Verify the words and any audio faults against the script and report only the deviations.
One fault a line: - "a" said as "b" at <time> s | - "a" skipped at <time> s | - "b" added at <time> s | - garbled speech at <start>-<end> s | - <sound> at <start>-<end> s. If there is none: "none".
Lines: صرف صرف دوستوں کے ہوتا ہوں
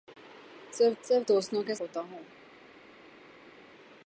none